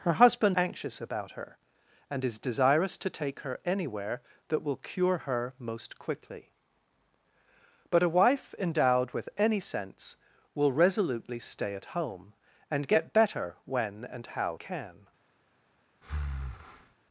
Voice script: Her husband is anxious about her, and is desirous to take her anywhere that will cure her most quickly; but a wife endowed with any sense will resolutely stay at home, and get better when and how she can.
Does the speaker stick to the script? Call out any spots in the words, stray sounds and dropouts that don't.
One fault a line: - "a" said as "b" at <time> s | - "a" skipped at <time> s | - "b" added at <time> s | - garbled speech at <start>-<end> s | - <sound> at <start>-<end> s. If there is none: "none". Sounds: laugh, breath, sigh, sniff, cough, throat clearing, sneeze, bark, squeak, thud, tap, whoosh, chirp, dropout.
- "is" skipped at 0.6 s
- "she" skipped at 14.6 s
- breath at 16.0-16.9 s